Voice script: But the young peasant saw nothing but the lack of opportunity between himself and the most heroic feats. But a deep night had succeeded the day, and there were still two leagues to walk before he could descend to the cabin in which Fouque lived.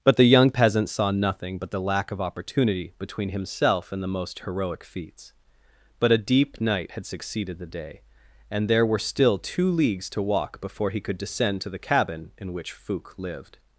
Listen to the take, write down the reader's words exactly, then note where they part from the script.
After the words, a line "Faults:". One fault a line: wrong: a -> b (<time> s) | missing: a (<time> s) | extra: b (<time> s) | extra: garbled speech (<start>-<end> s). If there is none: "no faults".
But the young peasant saw nothing but the lack of opportunity between himself and the most heroic feats. But a deep night had succeeded the day, and there were still two leagues to walk before he could descend to the cabin in which Fouque lived.
Faults:
no faults